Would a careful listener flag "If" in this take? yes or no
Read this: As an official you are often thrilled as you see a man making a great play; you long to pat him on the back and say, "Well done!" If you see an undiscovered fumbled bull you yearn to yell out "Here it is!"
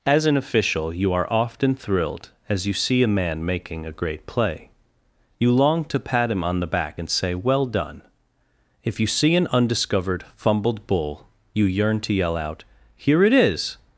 no